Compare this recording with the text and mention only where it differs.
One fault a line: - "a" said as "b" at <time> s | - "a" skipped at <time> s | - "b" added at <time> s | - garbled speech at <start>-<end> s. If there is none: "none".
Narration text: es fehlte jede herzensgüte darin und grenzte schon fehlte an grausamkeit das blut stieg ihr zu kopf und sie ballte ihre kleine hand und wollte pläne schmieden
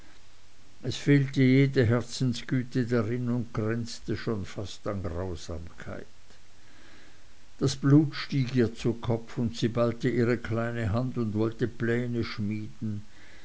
- "fehlte" said as "fast" at 4.5 s